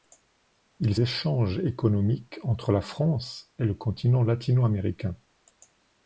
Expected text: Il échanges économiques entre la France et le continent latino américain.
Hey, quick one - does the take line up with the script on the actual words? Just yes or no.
yes